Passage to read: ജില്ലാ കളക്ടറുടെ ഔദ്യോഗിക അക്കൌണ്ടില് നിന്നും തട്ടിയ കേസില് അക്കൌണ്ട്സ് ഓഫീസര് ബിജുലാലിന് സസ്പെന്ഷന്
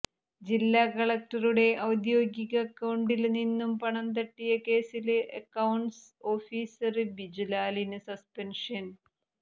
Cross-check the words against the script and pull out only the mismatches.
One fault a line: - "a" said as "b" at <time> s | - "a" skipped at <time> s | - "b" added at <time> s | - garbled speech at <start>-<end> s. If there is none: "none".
- "പണം" added at 3.8 s